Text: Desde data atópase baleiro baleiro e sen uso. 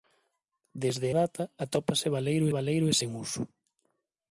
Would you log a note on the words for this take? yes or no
no